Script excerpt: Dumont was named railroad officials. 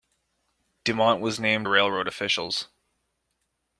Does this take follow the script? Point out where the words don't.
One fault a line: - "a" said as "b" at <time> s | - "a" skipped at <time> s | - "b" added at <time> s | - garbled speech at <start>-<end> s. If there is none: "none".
none